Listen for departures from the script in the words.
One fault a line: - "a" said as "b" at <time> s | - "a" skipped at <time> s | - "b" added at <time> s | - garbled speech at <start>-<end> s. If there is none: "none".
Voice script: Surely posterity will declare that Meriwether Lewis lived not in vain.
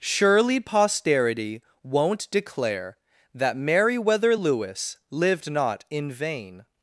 - "will" said as "won't" at 1.8 s